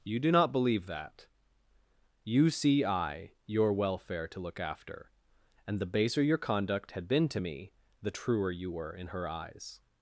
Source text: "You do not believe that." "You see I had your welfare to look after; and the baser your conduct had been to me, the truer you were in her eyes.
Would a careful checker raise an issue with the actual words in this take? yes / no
yes